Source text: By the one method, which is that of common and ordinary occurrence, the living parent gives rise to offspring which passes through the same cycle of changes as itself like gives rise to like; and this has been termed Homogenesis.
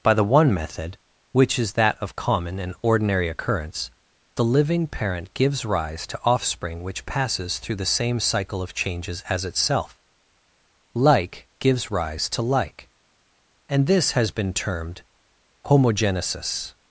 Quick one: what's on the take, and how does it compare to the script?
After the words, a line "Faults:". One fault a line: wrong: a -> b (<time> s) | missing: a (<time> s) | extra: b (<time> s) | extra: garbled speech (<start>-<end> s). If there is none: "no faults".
By the one method, which is that of common and ordinary occurrence, the living parent gives rise to offspring which passes through the same cycle of changes as itself like gives rise to like; and this has been termed Homogenesis.
Faults:
no faults